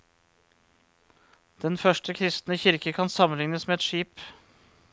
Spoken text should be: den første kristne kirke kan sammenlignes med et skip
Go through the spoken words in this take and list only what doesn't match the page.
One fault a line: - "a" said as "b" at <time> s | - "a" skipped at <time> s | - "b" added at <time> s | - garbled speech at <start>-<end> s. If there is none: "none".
none